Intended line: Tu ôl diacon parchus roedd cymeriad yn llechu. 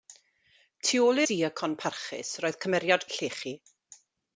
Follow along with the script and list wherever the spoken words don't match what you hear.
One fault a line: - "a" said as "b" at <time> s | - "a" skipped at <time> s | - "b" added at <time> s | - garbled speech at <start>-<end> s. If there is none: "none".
none